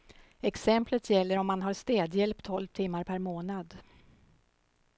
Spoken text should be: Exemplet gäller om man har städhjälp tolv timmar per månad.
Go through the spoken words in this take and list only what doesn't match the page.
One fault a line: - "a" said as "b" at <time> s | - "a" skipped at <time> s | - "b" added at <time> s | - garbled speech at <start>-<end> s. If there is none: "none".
none